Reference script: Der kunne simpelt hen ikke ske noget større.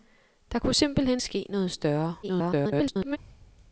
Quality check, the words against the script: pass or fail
fail